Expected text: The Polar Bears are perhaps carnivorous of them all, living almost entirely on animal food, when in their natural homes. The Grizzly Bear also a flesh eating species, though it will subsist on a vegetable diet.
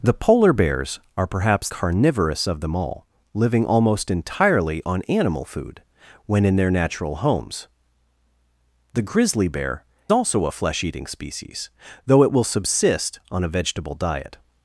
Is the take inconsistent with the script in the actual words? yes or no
no